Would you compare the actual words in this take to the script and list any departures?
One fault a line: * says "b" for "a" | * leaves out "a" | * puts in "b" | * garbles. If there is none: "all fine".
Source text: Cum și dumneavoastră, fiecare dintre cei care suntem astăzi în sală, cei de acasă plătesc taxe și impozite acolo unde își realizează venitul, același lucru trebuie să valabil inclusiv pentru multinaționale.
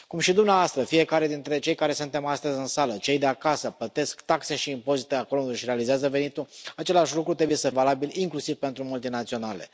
all fine